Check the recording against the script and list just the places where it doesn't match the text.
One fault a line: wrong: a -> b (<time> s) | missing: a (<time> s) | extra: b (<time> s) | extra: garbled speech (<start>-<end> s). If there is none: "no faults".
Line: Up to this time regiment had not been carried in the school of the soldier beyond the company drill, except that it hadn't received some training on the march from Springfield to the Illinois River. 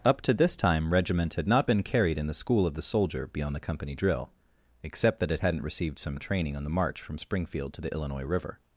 no faults